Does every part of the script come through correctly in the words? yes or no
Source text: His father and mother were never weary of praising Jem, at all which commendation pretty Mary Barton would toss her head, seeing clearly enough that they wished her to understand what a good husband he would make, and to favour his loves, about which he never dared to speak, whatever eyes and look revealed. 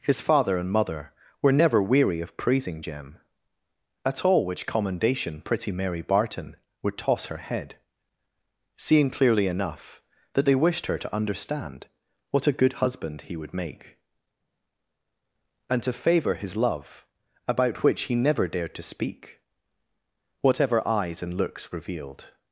no